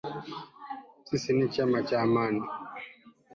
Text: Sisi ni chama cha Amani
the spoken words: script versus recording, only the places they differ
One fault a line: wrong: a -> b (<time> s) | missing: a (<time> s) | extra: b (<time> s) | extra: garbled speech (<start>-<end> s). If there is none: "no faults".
no faults